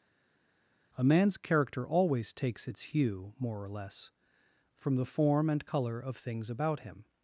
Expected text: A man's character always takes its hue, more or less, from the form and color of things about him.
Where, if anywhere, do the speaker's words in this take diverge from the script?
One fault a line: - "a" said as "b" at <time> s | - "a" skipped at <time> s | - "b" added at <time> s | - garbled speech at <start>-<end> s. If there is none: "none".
none